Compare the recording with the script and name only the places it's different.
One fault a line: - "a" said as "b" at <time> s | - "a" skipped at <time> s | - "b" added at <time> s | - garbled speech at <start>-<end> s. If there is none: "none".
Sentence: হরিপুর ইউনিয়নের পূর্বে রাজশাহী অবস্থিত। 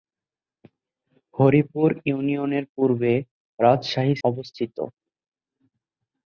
none